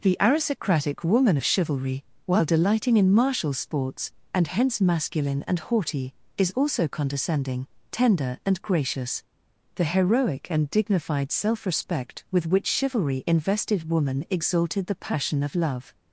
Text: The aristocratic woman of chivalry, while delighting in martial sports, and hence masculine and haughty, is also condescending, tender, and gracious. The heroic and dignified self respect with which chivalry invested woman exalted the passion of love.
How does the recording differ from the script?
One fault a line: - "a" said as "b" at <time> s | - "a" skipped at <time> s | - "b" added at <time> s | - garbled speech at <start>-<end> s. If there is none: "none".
none